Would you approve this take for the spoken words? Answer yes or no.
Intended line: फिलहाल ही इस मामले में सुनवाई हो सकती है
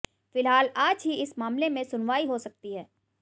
no